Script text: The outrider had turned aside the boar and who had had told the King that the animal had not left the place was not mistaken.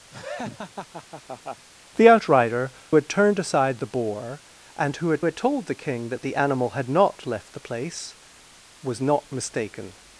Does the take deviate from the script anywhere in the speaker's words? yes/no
no